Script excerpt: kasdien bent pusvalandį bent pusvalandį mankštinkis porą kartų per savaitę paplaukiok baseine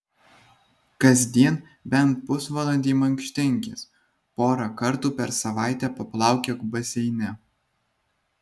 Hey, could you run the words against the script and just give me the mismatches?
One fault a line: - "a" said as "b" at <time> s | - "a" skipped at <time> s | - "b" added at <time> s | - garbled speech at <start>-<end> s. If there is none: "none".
- "bent pusvalandį" skipped at 3.0 s